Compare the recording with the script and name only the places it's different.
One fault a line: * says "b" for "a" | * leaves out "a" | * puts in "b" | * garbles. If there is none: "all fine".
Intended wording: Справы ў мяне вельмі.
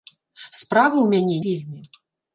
all fine